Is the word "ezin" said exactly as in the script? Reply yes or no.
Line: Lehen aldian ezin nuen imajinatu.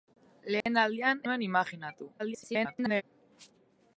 no